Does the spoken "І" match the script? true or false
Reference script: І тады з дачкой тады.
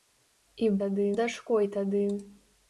true